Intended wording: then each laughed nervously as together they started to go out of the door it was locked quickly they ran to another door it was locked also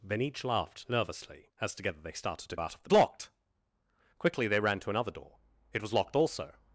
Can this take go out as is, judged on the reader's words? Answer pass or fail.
fail